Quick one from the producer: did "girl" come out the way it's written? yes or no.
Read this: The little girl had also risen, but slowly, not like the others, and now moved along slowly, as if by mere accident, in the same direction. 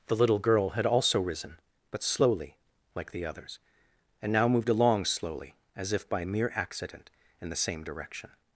yes